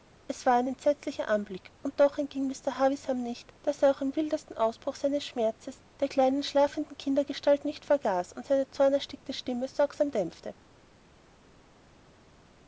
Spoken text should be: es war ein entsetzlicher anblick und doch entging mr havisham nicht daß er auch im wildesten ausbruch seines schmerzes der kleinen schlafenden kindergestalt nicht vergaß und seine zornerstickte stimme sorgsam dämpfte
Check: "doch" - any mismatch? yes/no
no